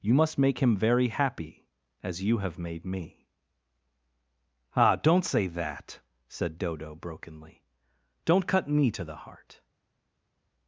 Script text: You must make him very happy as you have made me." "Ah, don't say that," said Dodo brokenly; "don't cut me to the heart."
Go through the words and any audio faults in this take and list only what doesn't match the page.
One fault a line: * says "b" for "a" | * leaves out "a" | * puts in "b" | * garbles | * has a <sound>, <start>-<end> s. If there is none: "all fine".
all fine